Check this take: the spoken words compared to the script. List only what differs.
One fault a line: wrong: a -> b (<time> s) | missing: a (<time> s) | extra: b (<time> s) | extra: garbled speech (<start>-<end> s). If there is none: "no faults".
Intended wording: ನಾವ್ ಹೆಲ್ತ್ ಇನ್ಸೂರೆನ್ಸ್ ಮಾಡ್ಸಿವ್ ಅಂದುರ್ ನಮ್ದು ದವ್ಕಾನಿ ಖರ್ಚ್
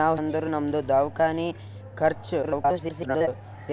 missing: ಹೆಲ್ತ್ ಇನ್ಸೂರೆನ್ಸ್ ಮಾಡ್ಸಿವ್ (0.2 s)
extra: garbled speech (2.4-3.3 s)